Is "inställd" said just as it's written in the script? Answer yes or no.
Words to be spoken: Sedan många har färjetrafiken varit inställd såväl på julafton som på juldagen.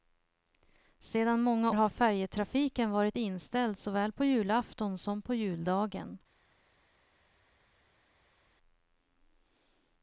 yes